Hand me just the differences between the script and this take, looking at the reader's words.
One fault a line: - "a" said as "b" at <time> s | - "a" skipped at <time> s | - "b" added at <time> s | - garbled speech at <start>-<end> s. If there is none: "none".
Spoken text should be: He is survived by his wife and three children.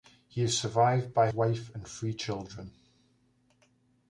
- "his" skipped at 1.3 s